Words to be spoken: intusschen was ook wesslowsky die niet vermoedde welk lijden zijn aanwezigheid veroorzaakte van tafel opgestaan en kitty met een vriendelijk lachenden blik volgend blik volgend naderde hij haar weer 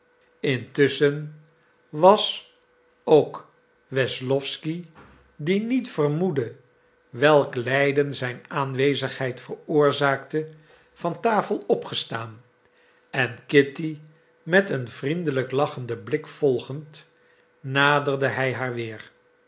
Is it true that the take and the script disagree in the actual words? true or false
true